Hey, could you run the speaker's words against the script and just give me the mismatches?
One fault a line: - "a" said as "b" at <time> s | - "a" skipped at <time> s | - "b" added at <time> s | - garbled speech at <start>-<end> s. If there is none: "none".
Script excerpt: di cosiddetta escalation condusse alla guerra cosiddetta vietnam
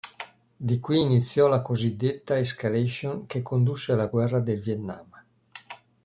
- "qui iniziò la" added at 0.8 s
- "che" added at 3.3 s
- "cosiddetta" said as "del" at 4.4 s